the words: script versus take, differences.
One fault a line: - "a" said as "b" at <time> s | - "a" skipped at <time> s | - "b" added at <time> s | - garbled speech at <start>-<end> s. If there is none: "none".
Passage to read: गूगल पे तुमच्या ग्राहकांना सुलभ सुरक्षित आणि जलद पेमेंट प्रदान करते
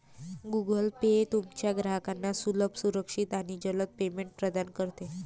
none